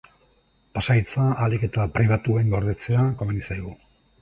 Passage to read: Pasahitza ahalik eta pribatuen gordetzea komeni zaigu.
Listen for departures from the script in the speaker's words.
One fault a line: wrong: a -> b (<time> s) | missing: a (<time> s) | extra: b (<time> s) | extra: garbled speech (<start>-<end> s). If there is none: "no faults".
no faults